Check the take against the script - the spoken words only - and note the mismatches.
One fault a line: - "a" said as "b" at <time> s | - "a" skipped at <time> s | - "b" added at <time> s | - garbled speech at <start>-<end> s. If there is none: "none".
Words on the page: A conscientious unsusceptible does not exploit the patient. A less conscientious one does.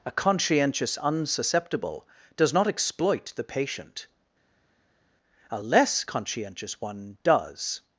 none